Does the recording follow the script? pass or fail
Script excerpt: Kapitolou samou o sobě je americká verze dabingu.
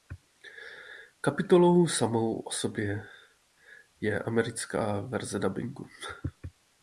pass